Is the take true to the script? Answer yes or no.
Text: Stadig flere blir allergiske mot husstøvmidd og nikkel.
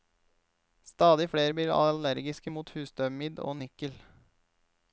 yes